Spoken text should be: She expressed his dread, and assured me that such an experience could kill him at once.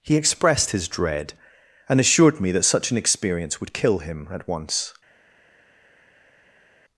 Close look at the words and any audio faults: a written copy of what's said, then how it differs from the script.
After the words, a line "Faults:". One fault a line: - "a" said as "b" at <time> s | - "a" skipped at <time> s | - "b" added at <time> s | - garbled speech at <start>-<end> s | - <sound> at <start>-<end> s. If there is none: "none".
He expressed his dread, and assured me that such an experience would kill him at once.
Faults:
- "She" said as "He" at 0.0 s
- "could" said as "would" at 3.6 s